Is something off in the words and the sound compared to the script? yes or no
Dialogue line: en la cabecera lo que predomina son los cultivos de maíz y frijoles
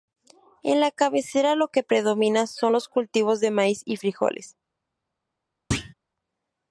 yes